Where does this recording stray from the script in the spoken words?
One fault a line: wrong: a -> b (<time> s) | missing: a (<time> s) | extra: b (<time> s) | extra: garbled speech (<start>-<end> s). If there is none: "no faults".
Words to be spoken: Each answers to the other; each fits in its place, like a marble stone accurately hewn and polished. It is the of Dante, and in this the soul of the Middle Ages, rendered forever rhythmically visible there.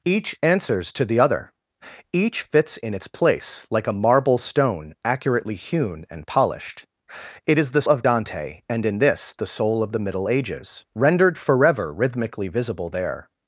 no faults